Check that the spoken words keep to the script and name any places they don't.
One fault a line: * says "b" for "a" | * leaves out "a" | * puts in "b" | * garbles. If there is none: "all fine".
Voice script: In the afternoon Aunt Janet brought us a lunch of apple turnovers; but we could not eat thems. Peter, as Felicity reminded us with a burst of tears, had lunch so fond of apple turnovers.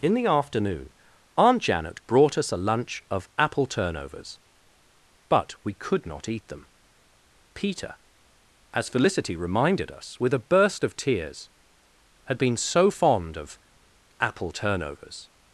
* says "them" for "thems"
* says "been" for "lunch"